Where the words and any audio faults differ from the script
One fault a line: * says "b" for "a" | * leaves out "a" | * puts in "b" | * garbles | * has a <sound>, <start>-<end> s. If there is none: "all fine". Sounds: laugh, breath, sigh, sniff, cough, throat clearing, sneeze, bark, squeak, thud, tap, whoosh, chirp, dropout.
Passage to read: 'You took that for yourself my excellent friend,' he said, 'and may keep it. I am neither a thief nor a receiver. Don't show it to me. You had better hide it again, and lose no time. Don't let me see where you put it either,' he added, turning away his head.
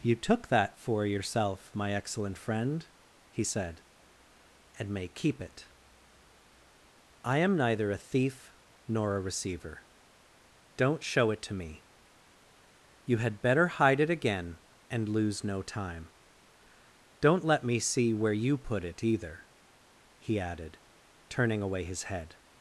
all fine